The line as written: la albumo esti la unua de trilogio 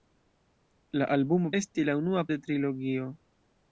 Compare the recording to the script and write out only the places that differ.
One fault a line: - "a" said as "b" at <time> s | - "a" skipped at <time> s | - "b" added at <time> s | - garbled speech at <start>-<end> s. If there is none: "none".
none